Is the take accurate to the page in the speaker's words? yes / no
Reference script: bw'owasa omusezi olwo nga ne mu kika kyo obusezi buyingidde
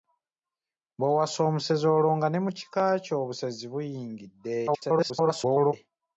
no